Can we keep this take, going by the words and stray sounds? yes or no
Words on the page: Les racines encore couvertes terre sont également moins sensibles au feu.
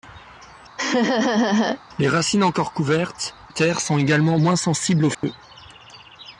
no